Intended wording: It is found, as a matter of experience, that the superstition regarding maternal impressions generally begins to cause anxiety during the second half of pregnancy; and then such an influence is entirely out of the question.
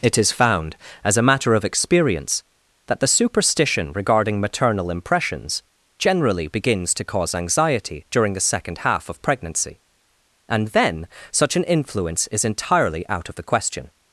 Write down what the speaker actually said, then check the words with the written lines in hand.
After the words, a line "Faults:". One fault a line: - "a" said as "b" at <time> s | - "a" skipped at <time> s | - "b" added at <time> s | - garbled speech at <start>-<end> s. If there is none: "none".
It is found, as a matter of experience, that the superstition regarding maternal impressions generally begins to cause anxiety during the second half of pregnancy; and then such an influence is entirely out of the question.
Faults:
none